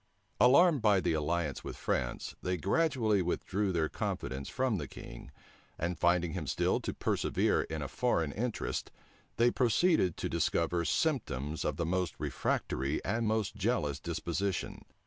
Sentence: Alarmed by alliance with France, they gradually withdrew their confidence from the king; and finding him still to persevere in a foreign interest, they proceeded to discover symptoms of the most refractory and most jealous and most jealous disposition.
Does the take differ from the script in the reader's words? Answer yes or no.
yes